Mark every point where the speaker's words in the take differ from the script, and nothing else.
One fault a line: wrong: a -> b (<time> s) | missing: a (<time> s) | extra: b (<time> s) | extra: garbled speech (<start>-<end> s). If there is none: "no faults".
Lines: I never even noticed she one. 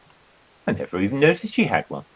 extra: had (1.7 s)